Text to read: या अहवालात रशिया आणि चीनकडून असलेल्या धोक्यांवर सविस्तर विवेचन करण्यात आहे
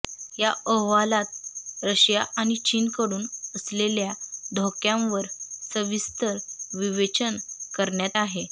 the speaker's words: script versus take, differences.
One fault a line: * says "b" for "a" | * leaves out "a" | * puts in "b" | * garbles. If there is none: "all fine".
all fine